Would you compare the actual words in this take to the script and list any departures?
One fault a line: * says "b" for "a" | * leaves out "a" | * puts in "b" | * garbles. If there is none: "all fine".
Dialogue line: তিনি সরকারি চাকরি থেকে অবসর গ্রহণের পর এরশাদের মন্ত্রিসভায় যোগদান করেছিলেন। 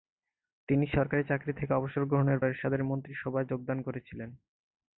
* leaves out "পর"